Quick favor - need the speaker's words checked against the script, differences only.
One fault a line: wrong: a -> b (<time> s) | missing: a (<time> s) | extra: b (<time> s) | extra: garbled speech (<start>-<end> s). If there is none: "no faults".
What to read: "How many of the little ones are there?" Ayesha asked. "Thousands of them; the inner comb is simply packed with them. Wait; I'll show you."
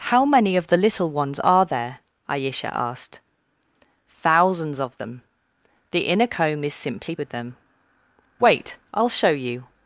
missing: packed (7.2 s)